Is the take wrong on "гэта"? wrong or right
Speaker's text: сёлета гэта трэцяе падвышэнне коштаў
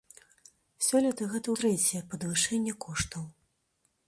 right